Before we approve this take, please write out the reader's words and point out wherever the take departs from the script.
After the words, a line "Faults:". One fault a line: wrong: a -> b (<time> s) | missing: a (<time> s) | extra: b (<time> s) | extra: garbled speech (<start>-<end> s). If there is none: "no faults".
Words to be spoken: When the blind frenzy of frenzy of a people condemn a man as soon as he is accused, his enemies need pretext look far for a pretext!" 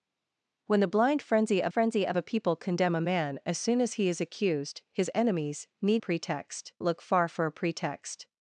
When the blind frenzy of frenzy of a people condemn a man as soon as he is accused, his enemies need pretext look far for a pretext!"
Faults:
no faults